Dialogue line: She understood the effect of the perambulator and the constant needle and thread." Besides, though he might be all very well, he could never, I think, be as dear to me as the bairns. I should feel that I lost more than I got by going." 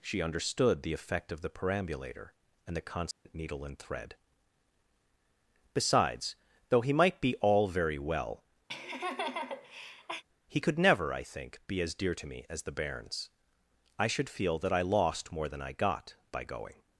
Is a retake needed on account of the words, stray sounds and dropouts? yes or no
yes